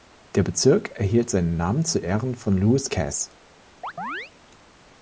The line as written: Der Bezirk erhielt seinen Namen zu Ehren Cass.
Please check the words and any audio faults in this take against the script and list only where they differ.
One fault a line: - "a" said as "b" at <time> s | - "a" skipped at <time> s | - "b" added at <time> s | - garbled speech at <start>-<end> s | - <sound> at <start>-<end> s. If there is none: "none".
- "von Lewis" added at 2.3 s
- chirp at 3.8-4.3 s